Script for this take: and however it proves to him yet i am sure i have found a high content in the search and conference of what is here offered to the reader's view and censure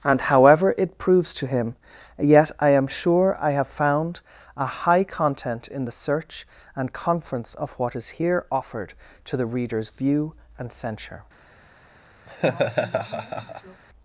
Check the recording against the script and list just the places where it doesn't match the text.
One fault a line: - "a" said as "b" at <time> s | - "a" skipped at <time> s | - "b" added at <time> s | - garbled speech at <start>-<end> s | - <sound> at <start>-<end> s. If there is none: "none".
- laugh at 12.3-13.8 s